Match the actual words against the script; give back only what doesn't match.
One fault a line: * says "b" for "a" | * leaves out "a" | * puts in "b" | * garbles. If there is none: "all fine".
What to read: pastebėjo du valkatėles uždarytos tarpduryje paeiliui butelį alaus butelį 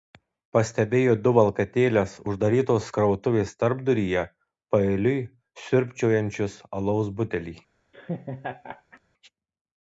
* puts in "krautuvės"
* says "siurbčiojančius" for "butelį"